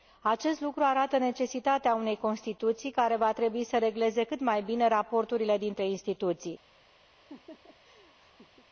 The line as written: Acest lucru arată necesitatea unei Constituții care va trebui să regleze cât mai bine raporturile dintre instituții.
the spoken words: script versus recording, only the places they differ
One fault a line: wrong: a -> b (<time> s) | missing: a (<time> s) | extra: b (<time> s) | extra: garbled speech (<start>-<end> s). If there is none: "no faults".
no faults